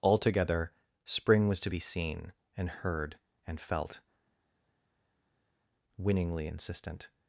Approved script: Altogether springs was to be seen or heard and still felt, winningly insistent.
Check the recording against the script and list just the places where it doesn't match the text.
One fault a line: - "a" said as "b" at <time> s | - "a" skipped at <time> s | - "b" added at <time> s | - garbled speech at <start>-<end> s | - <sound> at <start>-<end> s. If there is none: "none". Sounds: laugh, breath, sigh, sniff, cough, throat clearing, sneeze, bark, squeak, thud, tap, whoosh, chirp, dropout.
- "springs" said as "spring" at 1.1 s
- "or" said as "and" at 2.6 s
- "still" skipped at 3.6 s